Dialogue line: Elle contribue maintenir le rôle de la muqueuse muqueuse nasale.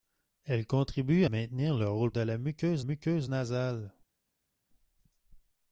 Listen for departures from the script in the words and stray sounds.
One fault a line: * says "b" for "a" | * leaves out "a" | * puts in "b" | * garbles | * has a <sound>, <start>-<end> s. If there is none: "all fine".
all fine